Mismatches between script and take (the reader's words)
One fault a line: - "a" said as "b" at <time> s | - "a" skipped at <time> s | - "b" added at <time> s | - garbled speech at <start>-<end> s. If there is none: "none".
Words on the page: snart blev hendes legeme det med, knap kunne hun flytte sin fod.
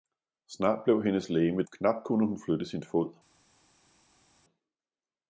- "det med" skipped at 1.6 s